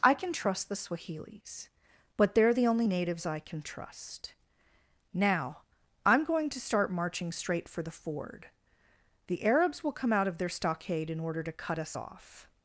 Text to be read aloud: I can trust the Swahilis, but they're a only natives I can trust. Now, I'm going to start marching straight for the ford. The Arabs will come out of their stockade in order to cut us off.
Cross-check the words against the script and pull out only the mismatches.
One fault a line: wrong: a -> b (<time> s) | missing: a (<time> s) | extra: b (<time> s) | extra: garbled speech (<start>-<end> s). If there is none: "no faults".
wrong: a -> the (2.5 s)